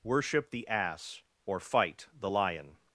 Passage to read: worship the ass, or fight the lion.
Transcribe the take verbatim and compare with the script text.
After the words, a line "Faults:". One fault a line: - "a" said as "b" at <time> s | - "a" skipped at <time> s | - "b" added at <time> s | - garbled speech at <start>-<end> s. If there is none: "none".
worship the ass, or fight the lion.
Faults:
none